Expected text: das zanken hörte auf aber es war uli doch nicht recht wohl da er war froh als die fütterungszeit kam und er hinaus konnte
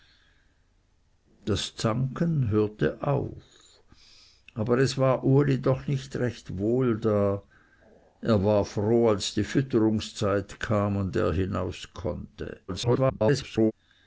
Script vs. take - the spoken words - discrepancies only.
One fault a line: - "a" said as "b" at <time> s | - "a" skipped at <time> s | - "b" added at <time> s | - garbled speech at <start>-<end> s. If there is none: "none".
- garbled speech at 12.7-13.7 s